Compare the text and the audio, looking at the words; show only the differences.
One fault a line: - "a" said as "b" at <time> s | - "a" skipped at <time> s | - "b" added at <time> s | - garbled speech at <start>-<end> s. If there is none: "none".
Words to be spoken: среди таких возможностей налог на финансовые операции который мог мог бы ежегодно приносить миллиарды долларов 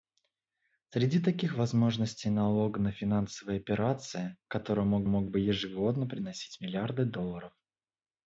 none